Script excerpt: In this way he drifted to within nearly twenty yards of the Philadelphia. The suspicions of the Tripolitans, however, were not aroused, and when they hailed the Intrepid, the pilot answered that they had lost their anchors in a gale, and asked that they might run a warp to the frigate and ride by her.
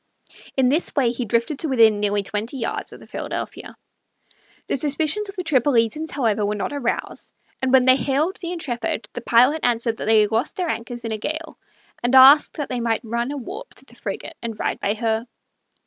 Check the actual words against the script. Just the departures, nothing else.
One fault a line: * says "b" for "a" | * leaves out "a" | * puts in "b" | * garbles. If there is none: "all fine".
all fine